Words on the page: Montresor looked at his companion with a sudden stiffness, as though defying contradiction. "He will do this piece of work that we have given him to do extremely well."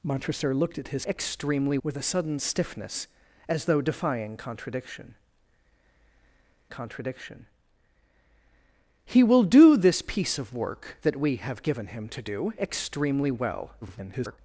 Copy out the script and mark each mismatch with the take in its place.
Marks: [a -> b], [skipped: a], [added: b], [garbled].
Montresor looked at his [companion -> extremely] with a sudden stiffness, as though defying contradiction. [added: contradiction] "He will do this piece of work that we have given him to do extremely well." [garbled]